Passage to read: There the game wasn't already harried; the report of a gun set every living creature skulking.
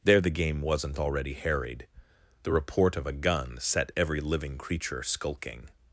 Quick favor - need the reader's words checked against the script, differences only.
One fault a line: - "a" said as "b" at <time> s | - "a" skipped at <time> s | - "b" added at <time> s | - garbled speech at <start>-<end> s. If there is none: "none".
none